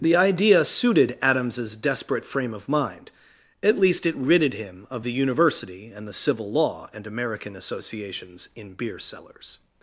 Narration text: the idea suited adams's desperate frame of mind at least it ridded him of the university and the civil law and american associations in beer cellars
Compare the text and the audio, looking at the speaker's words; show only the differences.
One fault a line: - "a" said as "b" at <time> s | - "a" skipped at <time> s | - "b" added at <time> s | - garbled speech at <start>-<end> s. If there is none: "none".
none